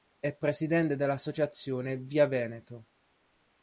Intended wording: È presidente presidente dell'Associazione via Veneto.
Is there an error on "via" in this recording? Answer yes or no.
no